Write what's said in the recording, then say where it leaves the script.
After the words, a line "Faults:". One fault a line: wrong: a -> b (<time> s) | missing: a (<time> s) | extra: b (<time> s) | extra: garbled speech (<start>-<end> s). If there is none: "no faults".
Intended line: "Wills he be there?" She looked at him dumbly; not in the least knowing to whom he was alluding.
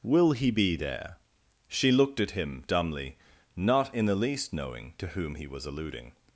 "Will he be there?" She looked at him dumbly; not in the least knowing to whom he was alluding.
Faults:
wrong: Wills -> Will (0.0 s)